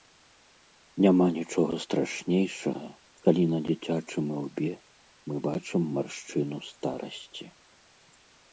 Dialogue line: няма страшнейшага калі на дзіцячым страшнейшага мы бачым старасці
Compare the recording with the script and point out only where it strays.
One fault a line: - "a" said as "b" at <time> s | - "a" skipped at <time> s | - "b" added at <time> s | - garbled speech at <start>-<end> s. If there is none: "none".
- "нічога" added at 1.4 s
- "страшнейшага" said as "ілбе" at 4.4 s
- "маршчыну" added at 6.0 s